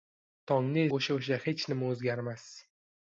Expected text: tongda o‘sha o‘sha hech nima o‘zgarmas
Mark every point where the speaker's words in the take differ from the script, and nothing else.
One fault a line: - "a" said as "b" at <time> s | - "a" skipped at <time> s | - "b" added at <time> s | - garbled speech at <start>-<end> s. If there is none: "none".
none